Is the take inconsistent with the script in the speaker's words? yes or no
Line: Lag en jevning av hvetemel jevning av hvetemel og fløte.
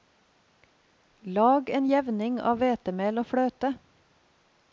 yes